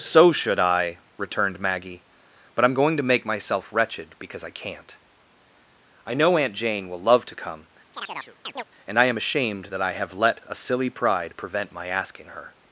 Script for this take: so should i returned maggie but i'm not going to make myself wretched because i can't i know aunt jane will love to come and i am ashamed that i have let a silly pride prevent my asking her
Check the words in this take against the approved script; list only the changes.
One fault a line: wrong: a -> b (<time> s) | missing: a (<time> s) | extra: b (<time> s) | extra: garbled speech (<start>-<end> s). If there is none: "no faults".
missing: not (2.7 s)